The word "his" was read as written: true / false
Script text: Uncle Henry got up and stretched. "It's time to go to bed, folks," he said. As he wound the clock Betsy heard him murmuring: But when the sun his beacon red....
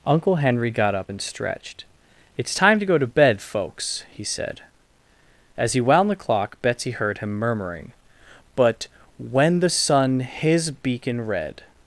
true